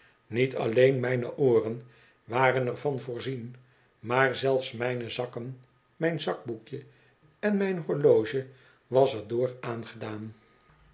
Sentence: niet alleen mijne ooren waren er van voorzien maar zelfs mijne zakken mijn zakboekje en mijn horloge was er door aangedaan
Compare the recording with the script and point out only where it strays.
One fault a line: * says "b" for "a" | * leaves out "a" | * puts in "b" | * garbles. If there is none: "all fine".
all fine